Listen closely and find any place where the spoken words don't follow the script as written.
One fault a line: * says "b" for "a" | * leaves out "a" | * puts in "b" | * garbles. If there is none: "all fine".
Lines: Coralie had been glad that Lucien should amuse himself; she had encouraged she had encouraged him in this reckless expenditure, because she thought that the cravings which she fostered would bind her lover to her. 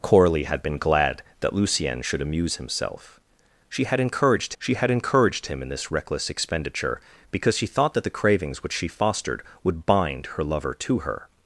all fine